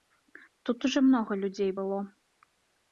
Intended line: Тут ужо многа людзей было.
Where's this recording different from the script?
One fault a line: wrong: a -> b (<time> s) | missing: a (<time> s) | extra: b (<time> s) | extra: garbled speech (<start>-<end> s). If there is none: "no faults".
no faults